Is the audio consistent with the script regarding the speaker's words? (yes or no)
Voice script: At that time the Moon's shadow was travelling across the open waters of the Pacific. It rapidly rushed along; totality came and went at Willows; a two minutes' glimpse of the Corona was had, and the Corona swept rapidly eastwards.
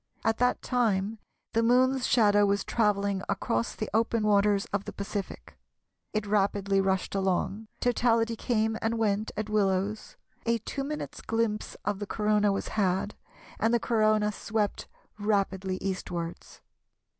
yes